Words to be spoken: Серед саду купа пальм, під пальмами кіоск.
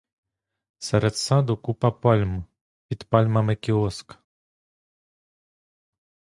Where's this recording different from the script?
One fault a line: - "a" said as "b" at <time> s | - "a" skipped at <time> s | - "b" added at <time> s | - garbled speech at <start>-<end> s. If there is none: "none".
none